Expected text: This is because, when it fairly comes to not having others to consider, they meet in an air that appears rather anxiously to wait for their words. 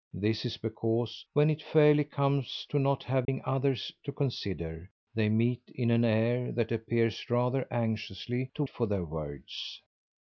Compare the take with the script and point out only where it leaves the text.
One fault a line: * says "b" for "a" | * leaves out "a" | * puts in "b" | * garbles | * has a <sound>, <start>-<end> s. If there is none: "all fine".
* has a dropout, 3.2-3.3 s
* leaves out "wait"